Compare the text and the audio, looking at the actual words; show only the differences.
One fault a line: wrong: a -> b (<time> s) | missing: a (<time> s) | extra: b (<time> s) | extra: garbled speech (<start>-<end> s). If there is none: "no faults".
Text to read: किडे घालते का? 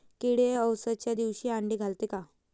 extra: अवसच्या दिवशी आंडे (0.5 s)